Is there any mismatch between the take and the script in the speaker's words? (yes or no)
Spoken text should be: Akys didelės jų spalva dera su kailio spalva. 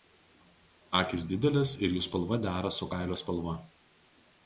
yes